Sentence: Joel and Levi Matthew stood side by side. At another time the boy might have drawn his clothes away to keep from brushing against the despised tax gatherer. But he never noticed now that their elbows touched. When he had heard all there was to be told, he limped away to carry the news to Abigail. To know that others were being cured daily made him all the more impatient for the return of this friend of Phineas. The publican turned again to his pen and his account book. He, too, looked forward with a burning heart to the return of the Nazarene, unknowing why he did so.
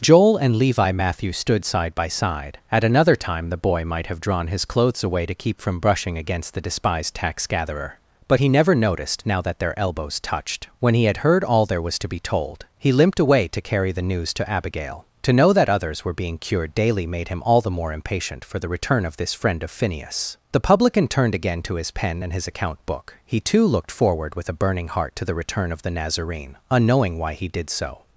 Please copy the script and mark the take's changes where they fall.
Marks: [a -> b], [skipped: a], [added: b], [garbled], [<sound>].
Joel and Levi Matthew stood side by side. At another time the boy might have drawn his clothes away to keep from brushing against the despised tax gatherer. But he never noticed now that their elbows touched. When he had heard all there was to be told, he limped away to carry the news to Abigail. To know that others were being cured daily made him all the more impatient for the return of this friend of Phineas. The publican turned again to his pen and his account book. He, too, looked forward with a burning heart to the return of the Nazarene, unknowing why he did so.